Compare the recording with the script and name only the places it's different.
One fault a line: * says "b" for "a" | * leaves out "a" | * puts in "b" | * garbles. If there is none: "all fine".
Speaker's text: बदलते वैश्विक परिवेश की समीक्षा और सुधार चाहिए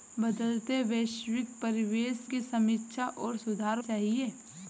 all fine